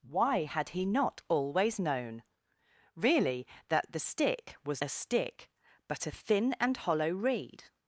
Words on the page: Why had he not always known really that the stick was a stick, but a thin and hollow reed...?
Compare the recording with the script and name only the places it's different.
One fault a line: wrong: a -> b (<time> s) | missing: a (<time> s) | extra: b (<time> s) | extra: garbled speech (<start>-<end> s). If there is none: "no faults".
no faults